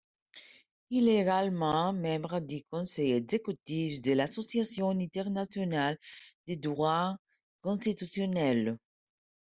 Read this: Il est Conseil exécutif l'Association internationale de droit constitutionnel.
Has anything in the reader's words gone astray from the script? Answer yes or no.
yes